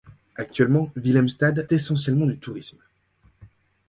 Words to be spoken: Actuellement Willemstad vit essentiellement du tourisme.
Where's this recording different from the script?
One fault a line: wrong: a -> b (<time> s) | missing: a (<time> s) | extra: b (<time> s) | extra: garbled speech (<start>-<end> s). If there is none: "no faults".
missing: vit (1.7 s)